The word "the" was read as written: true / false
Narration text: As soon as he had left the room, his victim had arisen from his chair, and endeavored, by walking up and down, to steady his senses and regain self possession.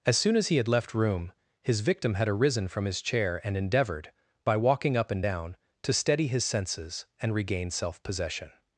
false